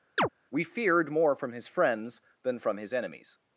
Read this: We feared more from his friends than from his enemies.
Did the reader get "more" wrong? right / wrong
right